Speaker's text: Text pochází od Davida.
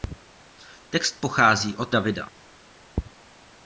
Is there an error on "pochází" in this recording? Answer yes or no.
no